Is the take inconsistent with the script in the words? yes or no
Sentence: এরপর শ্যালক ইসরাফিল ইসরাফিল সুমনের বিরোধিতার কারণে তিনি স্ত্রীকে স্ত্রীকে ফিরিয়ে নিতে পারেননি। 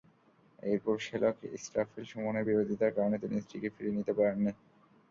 yes